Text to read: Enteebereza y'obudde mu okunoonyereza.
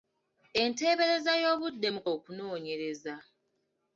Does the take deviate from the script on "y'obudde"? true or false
false